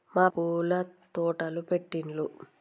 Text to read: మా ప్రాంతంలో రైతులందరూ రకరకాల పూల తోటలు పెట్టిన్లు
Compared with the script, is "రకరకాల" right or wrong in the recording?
wrong